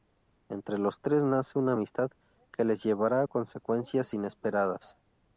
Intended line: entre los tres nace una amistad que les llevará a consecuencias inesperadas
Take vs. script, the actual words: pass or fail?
pass